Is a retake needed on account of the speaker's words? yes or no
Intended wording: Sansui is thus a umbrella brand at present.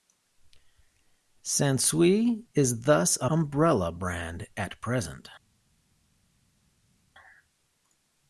no